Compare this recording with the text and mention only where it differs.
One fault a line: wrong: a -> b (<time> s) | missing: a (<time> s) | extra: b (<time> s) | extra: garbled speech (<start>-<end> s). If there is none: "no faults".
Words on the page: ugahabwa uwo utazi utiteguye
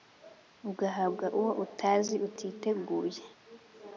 no faults